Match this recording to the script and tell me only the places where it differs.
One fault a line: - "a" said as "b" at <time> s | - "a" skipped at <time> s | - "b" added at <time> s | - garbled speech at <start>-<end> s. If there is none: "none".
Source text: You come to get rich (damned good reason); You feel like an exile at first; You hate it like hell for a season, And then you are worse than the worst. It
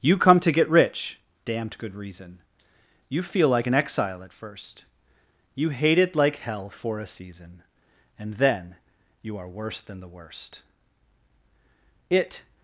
none